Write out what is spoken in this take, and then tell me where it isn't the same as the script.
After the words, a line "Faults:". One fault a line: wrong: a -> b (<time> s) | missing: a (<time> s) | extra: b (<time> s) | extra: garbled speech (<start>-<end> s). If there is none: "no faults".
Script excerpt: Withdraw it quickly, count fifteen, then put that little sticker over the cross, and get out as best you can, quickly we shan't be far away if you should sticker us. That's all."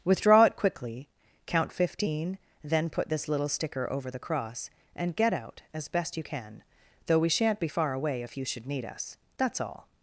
Withdraw it quickly, count fifteen, then put this little sticker over the cross, and get out as best you can, though we shan't be far away if you should need us. That's all."
Faults:
wrong: that -> this (3.1 s)
wrong: quickly -> though (7.1 s)
wrong: sticker -> need (8.7 s)